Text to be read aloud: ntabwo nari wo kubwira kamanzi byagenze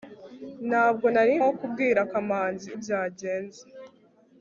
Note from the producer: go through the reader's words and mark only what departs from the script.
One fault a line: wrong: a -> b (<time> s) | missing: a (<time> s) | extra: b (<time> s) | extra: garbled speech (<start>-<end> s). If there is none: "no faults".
no faults